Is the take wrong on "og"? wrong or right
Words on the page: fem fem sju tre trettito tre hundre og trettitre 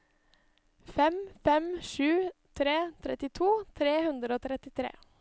right